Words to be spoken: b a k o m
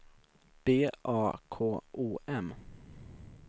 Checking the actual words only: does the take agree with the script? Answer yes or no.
yes